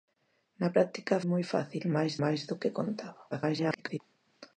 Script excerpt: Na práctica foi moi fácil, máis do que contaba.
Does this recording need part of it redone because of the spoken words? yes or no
yes